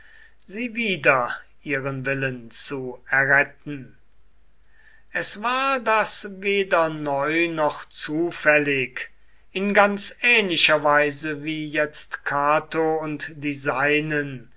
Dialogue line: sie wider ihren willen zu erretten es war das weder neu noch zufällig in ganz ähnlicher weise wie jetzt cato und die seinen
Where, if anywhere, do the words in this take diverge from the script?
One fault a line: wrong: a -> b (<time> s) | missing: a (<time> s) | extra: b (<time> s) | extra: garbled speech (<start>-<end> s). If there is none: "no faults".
no faults